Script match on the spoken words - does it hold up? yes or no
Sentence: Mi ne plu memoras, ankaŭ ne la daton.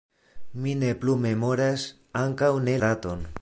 no